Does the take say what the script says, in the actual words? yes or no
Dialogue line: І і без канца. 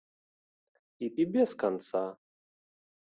yes